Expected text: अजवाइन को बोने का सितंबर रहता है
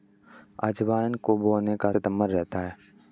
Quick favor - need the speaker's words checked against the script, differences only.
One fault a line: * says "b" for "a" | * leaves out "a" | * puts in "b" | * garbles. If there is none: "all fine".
all fine